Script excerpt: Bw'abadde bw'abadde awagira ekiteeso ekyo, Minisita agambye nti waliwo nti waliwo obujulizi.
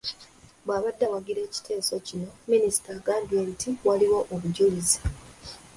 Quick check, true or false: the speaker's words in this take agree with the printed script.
false